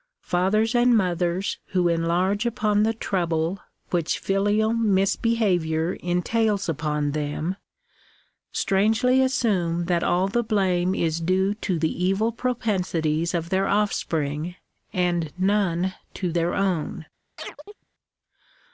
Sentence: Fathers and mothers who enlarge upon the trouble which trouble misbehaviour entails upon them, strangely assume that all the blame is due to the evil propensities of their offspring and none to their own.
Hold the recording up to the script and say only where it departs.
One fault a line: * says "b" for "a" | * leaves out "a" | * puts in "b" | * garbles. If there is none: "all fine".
* says "filial" for "trouble"